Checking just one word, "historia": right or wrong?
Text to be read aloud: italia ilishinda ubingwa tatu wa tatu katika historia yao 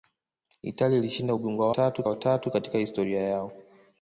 right